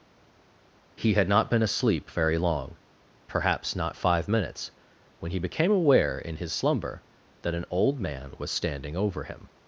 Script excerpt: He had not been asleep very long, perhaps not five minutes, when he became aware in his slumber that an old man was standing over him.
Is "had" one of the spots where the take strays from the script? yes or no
no